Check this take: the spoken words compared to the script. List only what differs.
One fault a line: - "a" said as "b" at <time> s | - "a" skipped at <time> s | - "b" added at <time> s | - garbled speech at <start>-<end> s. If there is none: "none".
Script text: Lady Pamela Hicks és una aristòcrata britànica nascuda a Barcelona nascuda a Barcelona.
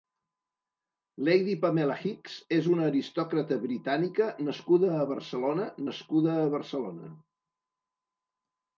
none